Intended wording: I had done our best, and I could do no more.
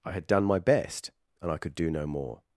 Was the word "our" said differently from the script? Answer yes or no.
yes